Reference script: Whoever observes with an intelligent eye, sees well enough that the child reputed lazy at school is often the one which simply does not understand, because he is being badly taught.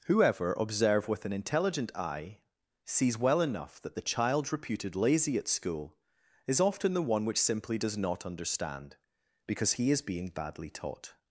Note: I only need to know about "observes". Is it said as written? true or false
false